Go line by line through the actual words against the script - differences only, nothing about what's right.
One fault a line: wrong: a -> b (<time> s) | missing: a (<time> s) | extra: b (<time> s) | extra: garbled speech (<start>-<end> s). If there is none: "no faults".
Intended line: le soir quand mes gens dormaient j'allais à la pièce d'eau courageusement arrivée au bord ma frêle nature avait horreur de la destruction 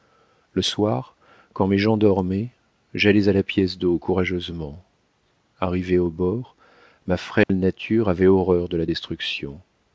no faults